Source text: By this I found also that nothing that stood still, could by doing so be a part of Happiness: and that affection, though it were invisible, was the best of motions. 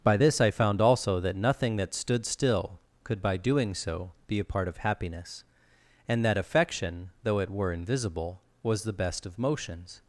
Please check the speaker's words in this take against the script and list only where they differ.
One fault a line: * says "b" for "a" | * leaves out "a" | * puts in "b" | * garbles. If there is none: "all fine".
all fine